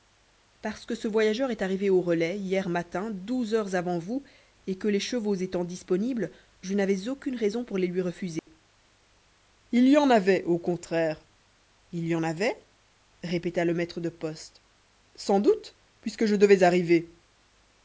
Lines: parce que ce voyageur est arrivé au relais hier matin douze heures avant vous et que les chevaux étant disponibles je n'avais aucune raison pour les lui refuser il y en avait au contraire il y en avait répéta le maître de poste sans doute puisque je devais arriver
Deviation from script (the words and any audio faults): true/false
true